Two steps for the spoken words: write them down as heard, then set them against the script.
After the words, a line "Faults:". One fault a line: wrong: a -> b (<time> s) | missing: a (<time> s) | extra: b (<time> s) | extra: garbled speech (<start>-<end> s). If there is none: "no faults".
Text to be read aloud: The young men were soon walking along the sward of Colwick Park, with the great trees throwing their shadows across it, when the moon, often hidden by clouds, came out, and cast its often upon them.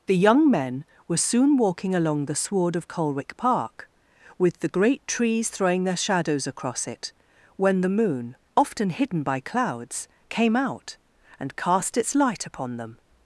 The young men were soon walking along the sward of Colwick Park, with the great trees throwing their shadows across it, when the moon, often hidden by clouds, came out, and cast its light upon them.
Faults:
wrong: often -> light (12.2 s)